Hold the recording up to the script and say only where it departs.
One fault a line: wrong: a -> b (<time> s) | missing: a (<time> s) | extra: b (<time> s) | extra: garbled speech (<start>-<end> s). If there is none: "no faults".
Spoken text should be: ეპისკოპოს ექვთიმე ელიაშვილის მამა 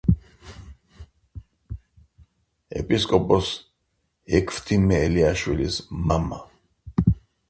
no faults